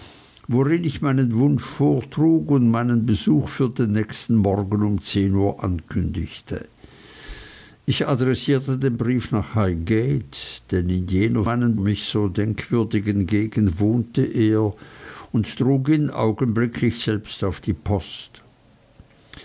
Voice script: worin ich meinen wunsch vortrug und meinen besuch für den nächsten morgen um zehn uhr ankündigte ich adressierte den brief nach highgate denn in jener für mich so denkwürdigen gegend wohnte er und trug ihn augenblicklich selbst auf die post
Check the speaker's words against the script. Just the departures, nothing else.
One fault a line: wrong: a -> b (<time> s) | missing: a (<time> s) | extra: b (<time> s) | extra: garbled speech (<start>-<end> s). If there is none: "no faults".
wrong: für -> meinen (11.4 s)